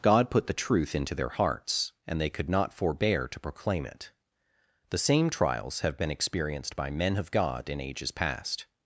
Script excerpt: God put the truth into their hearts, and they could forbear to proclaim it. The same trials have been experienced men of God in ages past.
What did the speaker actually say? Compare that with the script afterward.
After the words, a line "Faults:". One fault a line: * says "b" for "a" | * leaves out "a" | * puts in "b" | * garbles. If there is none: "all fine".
God put the truth into their hearts, and they could not forbear to proclaim it. The same trials have been experienced by men of God in ages past.
Faults:
* puts in "not"
* puts in "by"